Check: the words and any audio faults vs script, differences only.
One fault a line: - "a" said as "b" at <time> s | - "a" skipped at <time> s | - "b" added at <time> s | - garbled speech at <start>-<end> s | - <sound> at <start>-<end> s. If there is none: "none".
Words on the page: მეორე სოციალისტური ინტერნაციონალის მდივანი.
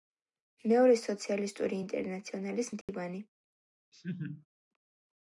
- dropout at 2.8-2.9 s
- laugh at 3.9-4.5 s